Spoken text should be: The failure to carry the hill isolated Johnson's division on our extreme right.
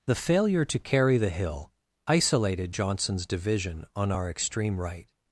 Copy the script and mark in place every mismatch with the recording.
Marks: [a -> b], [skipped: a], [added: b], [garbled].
The failure to carry the hill isolated Johnson's division on our extreme right.